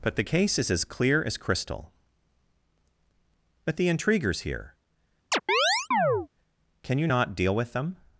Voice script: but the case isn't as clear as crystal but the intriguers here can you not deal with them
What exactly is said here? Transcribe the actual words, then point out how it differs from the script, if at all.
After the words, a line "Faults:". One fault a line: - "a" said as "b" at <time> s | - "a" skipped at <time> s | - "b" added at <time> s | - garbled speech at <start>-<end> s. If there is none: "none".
but the case is as clear as crystal but the intriguers here can you not deal with them
Faults:
- "isn't" said as "is" at 0.6 s